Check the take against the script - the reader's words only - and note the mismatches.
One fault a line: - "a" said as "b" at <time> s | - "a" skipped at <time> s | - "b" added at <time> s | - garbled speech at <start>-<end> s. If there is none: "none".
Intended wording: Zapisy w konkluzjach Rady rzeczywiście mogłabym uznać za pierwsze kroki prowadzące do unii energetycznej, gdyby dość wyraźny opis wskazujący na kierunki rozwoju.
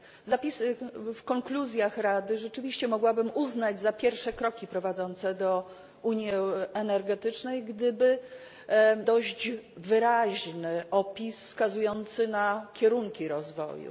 none